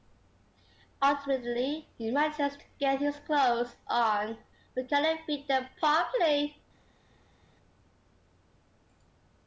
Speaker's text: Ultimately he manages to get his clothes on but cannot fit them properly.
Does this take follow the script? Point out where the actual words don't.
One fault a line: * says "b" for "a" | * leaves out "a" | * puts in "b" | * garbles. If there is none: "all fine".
all fine